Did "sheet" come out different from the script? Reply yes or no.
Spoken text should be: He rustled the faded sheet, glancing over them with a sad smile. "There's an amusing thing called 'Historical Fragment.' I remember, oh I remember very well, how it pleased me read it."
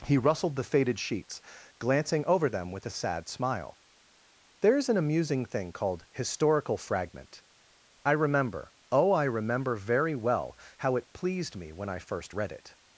yes